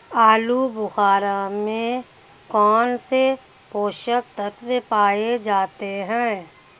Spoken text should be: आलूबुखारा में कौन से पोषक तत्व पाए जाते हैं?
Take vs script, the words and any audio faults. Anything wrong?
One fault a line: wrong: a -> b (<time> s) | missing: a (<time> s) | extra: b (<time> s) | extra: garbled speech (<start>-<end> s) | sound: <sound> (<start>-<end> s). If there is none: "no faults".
no faults